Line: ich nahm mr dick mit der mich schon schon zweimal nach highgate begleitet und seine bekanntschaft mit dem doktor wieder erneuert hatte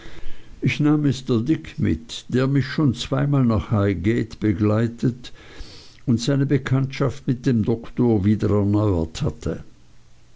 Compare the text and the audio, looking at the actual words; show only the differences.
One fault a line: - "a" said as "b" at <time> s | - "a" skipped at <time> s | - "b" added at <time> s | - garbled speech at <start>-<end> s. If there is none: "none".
- "schon" skipped at 3.0 s